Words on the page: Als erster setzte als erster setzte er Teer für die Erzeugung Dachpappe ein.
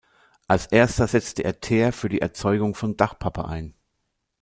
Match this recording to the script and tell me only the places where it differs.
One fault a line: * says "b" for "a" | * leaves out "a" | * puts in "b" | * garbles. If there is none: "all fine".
* leaves out "als erster setzte"
* puts in "von"